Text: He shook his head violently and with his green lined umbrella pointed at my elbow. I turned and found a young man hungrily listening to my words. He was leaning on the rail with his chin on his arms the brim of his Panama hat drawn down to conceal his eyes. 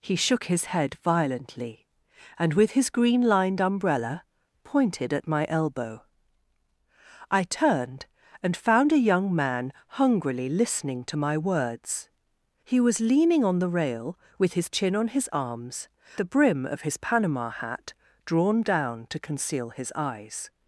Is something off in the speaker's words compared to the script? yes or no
no